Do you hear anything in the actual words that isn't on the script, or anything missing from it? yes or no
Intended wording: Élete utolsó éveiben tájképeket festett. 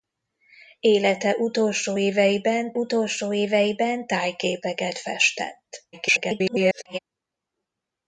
yes